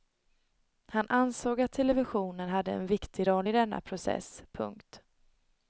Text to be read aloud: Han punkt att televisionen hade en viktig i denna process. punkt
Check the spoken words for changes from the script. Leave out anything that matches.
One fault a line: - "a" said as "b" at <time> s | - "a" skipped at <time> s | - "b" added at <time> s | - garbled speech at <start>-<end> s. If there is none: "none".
- "punkt" said as "ansåg" at 1.1 s
- "roll" added at 3.3 s